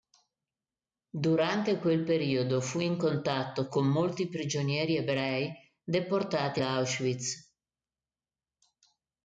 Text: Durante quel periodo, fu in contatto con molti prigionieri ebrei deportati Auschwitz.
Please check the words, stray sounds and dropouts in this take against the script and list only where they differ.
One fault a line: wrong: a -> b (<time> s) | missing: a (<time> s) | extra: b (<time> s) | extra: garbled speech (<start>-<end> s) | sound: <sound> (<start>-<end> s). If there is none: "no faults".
no faults